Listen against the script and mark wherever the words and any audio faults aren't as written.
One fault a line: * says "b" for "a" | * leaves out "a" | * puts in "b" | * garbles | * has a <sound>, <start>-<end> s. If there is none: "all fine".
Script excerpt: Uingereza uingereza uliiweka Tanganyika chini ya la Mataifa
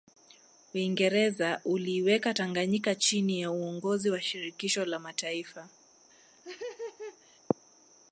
* leaves out "uingereza"
* puts in "uongozi wa Shirikisho"
* has a laugh, 6.1-7.4 s